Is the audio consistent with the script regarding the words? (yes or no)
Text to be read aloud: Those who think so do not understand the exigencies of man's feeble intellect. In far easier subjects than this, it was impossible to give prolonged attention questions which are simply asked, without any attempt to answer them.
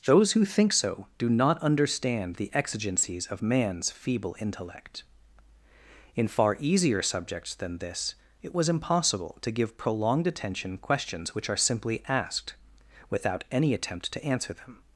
yes